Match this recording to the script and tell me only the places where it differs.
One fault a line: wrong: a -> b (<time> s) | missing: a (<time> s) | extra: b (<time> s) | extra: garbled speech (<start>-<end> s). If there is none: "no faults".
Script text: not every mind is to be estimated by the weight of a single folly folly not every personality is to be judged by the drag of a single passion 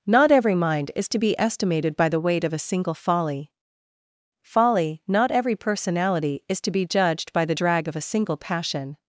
no faults